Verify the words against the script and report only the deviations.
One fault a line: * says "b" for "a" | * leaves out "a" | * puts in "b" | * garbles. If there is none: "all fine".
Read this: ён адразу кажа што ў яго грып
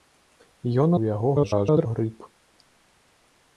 * leaves out "адразу кажа што"
* garbles